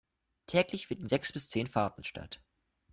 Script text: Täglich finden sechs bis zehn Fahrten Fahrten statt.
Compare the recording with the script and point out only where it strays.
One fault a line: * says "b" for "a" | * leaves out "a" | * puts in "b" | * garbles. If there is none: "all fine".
* leaves out "Fahrten"